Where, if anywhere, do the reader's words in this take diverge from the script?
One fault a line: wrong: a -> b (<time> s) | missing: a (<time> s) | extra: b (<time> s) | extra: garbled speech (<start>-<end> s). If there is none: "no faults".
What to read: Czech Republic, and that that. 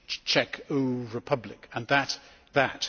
no faults